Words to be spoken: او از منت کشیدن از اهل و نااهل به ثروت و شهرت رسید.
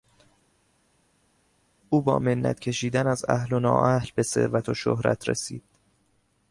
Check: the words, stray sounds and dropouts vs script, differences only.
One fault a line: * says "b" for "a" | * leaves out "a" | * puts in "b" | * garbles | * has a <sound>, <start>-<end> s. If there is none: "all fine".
* says "با" for "از"